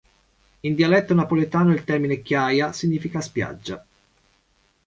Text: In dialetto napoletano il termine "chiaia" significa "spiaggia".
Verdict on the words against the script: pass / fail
pass